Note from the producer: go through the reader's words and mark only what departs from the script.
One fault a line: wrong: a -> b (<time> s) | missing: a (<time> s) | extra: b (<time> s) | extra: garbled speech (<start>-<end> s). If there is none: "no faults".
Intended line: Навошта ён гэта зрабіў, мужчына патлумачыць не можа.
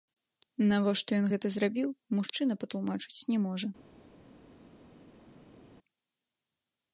no faults